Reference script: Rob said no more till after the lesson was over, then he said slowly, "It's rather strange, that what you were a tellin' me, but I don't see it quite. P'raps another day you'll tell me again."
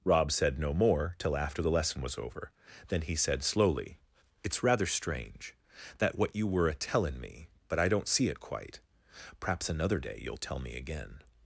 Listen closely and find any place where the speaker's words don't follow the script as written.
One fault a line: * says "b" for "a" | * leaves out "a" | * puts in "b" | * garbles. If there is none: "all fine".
all fine